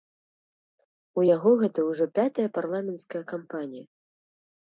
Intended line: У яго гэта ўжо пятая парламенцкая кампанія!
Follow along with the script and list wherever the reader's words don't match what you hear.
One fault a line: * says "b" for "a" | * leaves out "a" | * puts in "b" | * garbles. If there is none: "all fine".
all fine